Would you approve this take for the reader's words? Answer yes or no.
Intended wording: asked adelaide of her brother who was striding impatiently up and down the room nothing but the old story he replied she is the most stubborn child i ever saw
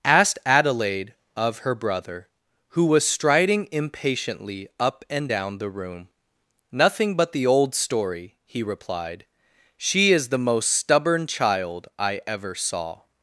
yes